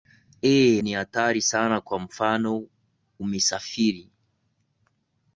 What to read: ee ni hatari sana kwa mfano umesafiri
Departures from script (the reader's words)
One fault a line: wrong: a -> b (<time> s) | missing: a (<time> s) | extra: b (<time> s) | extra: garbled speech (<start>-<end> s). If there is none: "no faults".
no faults